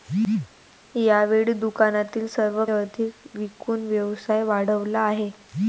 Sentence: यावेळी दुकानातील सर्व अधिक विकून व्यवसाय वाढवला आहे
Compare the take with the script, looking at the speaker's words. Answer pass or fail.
pass